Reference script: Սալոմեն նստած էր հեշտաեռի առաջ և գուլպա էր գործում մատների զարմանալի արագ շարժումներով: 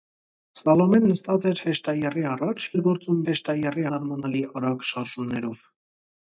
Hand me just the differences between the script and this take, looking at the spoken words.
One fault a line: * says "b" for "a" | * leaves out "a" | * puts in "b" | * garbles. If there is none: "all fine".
* leaves out "և գուլպա"
* says "հեշտաեռի" for "մատների"